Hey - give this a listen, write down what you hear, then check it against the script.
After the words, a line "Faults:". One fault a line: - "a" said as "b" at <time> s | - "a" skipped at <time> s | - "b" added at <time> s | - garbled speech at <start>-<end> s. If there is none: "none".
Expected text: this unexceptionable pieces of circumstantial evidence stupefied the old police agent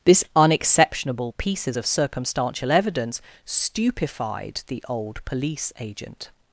this unexceptionable pieces of circumstantial evidence stupefied the old police agent
Faults:
none